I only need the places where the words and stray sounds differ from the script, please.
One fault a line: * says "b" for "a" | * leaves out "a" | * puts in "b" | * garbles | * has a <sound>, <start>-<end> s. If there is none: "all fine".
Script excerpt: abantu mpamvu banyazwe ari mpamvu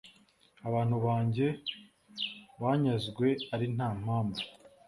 * says "banjye" for "mpamvu"
* puts in "nta"